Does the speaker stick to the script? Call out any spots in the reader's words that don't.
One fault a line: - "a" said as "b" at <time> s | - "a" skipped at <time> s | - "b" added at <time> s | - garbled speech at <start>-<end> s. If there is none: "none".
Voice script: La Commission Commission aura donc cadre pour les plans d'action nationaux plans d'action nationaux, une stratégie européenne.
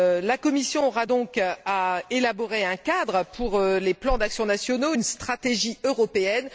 - "Commission" skipped at 0.9 s
- "à élaborer un" added at 1.6 s
- "plans d'action nationaux" skipped at 4.9 s